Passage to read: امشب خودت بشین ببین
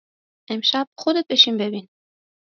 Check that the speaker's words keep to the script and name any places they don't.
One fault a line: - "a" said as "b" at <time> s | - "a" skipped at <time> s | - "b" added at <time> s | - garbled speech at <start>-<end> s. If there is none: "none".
none